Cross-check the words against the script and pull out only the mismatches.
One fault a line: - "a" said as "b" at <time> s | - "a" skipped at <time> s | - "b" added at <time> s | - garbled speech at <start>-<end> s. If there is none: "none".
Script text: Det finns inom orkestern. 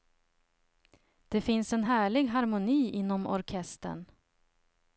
- "en härlig harmoni" added at 1.7 s